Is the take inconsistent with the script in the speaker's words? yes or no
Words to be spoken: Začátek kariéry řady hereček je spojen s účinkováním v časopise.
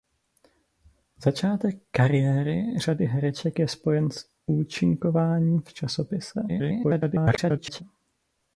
yes